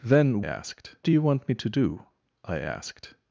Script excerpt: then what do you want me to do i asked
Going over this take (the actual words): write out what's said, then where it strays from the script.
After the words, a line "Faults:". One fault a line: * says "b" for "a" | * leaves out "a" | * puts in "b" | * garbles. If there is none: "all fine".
then asked do you want me to do i asked
Faults:
* says "asked" for "what"